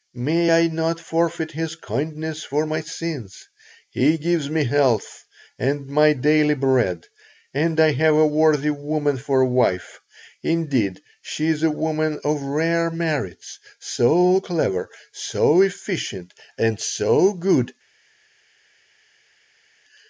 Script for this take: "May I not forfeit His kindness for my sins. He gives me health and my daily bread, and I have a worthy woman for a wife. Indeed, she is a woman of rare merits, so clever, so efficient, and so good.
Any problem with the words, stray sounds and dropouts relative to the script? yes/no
no